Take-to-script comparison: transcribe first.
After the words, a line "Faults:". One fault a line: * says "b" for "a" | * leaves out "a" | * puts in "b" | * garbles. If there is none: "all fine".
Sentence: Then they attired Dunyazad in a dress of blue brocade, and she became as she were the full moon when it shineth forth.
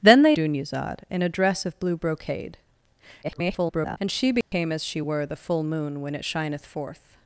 Then they Dunyazad in a dress of blue brocade, [garbled] and she became as she were the full moon when it shineth forth.
Faults:
* leaves out "attired"
* garbles